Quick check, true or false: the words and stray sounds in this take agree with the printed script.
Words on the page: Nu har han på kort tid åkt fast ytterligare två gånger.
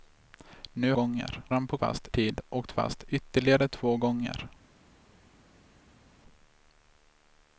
false